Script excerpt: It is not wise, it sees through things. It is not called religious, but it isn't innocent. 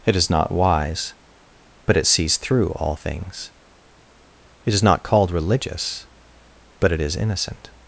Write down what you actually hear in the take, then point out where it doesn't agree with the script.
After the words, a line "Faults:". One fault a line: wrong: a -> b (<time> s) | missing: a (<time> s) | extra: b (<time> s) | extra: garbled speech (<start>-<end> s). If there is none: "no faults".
It is not wise, but it sees through all things. It is not called religious, but it is innocent.
Faults:
extra: but (1.9 s)
extra: all (2.7 s)
wrong: isn't -> is (7.0 s)